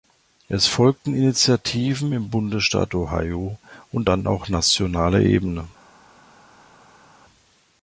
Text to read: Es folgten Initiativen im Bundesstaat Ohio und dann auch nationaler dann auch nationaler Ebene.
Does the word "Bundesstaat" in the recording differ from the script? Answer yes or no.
no